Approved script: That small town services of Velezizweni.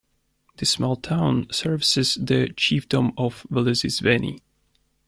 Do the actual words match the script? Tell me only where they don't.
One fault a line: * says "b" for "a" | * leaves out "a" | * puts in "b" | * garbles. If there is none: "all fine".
* says "This" for "That"
* puts in "the chiefdom"